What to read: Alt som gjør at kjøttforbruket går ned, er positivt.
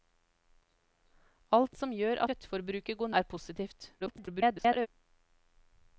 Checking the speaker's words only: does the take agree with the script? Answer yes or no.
no